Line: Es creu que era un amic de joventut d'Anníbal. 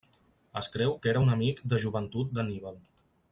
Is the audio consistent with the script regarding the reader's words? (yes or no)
yes